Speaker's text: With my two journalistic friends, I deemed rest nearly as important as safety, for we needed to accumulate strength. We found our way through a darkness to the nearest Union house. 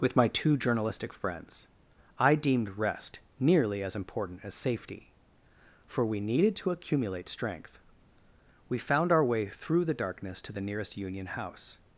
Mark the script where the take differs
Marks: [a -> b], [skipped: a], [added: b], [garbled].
With my two journalistic friends, I deemed rest nearly as important as safety, for we needed to accumulate strength. We found our way through [a -> the] darkness to the nearest Union house.